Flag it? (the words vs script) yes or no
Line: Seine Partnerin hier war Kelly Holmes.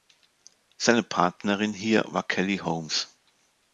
no